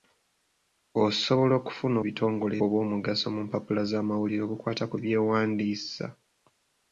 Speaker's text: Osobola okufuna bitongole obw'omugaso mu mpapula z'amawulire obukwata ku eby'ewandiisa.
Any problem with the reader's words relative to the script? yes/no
no